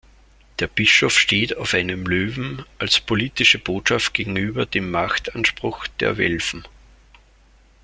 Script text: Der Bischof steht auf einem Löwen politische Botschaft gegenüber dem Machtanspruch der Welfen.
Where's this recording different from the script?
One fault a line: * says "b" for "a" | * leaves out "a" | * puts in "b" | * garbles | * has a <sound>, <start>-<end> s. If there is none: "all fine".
* puts in "als"